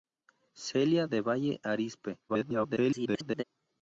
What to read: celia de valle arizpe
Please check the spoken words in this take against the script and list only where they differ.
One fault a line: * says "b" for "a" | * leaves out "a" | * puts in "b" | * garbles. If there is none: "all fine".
* garbles